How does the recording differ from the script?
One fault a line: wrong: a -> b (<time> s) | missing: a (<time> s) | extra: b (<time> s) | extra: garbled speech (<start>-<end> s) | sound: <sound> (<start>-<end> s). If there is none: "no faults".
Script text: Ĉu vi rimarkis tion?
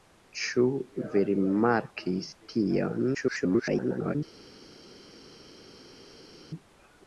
extra: garbled speech (3.1-4.2 s)